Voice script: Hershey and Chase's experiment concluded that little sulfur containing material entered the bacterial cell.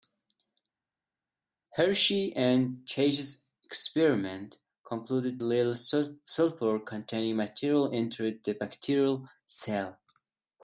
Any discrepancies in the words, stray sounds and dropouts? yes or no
yes